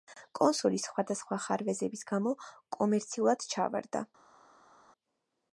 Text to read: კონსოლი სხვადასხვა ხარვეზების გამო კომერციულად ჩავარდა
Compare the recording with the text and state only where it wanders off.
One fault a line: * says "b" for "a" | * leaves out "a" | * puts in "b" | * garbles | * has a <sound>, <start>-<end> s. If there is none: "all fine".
all fine